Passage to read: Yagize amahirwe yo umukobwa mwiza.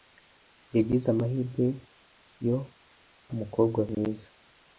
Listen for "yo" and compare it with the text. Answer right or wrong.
right